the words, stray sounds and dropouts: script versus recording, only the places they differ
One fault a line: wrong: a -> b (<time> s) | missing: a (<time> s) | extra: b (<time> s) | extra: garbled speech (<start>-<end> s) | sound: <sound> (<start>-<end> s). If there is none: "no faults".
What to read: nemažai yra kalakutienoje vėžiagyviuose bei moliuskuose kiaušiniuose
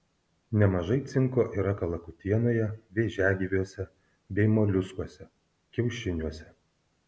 extra: cinko (1.1 s)